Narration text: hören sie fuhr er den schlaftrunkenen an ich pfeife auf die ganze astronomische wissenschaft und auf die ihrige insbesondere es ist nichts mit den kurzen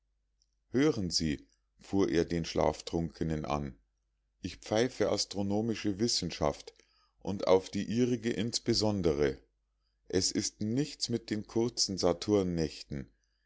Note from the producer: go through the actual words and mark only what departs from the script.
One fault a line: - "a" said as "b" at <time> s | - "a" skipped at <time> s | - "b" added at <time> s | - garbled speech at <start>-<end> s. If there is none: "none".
- "auf die ganze" skipped at 5.1 s